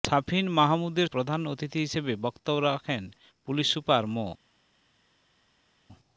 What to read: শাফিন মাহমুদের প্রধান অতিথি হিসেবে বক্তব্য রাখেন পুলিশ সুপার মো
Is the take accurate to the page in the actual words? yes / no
yes